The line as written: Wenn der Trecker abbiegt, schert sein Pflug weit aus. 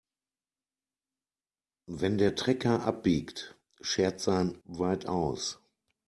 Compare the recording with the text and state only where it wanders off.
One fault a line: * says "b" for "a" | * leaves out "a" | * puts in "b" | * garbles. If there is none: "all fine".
* leaves out "Pflug"